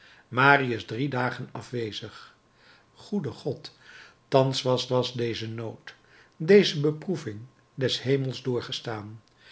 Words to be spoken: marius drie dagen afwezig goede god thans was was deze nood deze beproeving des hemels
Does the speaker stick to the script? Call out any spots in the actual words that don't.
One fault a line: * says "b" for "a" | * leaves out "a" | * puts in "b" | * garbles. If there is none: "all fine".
all fine